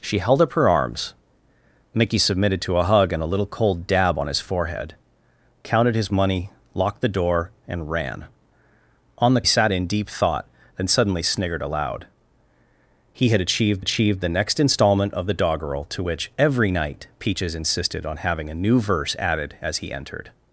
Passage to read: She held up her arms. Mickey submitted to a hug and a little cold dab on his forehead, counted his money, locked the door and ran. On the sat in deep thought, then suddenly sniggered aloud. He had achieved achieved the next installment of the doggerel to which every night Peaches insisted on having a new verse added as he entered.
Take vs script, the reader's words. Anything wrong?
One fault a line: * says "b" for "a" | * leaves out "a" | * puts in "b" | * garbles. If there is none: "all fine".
all fine